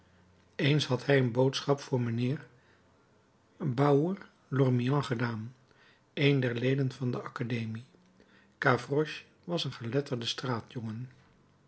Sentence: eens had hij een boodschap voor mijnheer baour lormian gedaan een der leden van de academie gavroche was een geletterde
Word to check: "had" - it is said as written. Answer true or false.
true